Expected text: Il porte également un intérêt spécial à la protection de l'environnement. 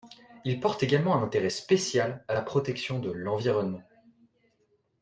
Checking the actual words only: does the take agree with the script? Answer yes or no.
yes